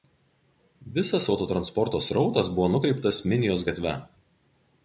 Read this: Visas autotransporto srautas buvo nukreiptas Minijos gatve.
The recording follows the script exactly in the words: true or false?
true